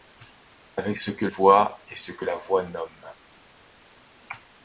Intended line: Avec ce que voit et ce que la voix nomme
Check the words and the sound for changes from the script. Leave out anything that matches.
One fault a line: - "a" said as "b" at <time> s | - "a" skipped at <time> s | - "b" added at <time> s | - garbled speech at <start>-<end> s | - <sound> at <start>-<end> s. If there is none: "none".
none